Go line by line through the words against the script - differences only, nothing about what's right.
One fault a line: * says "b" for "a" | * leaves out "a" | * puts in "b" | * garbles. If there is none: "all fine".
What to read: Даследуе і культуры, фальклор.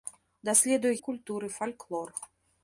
all fine